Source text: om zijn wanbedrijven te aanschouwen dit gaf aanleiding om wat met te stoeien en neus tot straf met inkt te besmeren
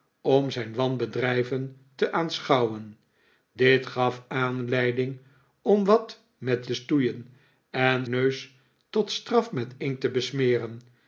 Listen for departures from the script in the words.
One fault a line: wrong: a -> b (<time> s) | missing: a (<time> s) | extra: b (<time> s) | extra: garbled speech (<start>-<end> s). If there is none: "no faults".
no faults